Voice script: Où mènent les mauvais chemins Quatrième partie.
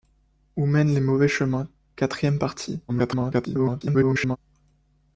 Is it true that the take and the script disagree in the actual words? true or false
true